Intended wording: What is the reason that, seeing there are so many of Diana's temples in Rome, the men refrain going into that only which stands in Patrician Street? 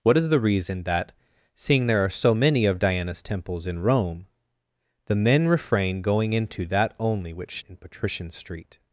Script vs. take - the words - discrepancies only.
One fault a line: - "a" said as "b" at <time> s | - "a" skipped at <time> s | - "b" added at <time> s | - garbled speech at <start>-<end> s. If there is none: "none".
- "stands" skipped at 7.6 s